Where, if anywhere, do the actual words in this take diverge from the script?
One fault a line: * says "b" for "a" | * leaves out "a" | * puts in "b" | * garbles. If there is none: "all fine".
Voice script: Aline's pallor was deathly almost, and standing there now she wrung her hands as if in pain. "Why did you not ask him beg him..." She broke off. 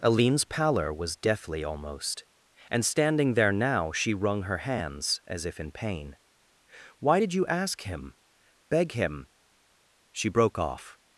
* leaves out "not"